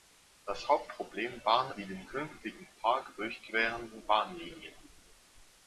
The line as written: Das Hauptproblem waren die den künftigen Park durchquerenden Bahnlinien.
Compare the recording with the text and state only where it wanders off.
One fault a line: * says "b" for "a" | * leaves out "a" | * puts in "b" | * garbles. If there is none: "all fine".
all fine